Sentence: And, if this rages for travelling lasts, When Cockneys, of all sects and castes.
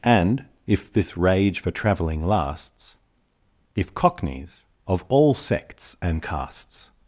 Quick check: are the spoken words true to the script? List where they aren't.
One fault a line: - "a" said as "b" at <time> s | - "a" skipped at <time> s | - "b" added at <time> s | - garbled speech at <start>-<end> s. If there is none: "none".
- "rages" said as "rage" at 1.2 s
- "When" said as "If" at 3.7 s